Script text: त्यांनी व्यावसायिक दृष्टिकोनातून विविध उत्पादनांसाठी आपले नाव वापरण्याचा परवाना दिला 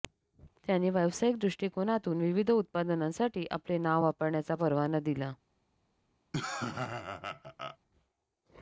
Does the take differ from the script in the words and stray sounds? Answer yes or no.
yes